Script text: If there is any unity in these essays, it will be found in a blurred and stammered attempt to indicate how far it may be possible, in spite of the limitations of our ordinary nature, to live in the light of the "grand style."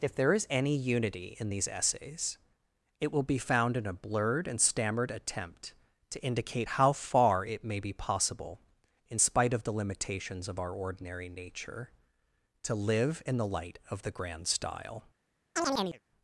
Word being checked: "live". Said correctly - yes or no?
yes